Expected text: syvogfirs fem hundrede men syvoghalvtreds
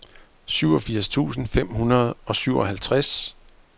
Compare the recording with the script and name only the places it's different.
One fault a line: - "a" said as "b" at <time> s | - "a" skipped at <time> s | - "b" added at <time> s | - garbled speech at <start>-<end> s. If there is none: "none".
- "tusind" added at 1.1 s
- "men" said as "og" at 2.2 s